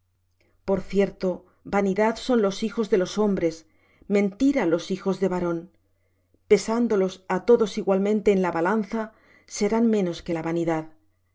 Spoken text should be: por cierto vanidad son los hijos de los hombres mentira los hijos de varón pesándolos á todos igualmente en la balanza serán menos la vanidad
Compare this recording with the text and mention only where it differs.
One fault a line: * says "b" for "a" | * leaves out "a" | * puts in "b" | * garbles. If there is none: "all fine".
* puts in "que"